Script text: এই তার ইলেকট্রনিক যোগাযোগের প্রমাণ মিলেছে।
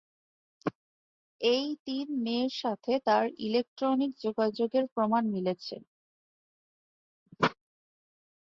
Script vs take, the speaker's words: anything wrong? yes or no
yes